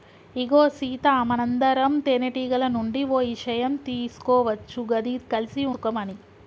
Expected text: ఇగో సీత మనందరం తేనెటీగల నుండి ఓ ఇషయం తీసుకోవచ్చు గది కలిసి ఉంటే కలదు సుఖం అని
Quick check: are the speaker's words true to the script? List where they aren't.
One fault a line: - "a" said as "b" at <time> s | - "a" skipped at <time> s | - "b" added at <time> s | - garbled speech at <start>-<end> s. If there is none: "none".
- "ఉంటే కలదు" skipped at 5.7 s